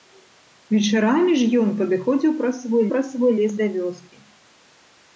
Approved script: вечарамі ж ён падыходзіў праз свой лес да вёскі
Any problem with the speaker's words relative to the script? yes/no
yes